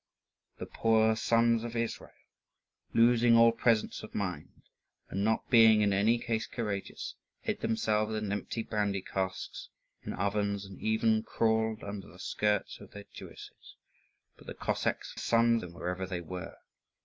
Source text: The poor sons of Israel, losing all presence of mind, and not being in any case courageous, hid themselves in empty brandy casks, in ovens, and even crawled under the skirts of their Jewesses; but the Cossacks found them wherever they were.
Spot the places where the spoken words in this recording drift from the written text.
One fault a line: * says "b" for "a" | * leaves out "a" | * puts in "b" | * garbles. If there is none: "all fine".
* says "sons" for "found"